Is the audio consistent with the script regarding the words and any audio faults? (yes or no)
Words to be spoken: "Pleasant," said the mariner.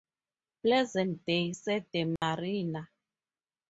no